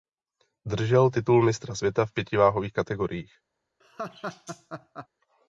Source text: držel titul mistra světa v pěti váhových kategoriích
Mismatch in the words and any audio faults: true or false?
true